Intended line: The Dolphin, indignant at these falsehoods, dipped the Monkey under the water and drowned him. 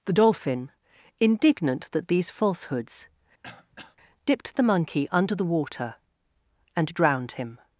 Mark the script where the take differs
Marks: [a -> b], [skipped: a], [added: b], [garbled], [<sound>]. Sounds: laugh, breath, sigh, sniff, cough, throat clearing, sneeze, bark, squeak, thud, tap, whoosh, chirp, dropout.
The Dolphin, indignant [at -> that] these falsehoods, [throat clearing] dipped the Monkey under the water and drowned him.